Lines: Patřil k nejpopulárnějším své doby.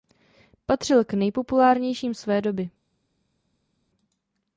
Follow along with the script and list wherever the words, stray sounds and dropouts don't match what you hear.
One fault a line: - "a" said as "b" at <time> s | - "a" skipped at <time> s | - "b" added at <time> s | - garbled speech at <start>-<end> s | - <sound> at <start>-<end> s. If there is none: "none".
none